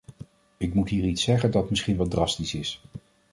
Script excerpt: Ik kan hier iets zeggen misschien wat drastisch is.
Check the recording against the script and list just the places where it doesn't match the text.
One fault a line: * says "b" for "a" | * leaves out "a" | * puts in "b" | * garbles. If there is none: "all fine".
* says "moet" for "kan"
* puts in "dat"